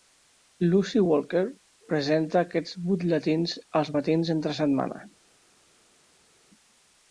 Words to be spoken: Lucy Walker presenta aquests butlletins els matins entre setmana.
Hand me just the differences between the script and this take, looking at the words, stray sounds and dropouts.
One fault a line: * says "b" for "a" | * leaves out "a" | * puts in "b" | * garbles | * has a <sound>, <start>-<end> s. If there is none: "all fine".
all fine